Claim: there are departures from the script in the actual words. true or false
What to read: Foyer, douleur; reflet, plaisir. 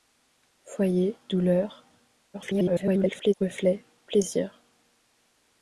true